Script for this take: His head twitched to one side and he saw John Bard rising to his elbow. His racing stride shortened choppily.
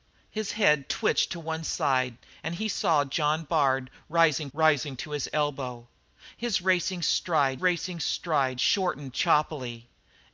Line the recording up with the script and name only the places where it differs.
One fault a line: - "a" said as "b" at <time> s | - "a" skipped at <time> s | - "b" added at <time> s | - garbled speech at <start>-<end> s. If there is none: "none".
- "rising" added at 4.5 s
- "racing stride" added at 7.6 s